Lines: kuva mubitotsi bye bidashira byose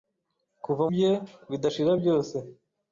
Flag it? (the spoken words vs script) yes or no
yes